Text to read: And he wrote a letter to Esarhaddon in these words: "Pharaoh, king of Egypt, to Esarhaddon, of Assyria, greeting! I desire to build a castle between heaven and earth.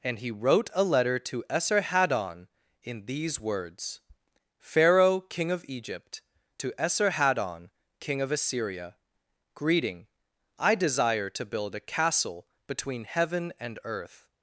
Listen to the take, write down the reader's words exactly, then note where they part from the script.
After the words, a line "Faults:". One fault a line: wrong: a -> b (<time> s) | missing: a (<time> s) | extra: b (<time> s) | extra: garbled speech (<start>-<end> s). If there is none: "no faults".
And he wrote a letter to Esarhaddon in these words: "Pharaoh, king of Egypt, to Esarhaddon, king of Assyria, greeting! I desire to build a castle between heaven and earth.
Faults:
extra: king (8.0 s)